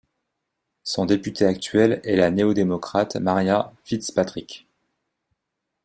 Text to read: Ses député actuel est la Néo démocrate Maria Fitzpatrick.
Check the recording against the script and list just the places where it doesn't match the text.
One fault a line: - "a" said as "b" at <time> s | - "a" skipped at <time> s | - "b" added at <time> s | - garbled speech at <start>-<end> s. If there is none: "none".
- "Ses" said as "Son" at 0.8 s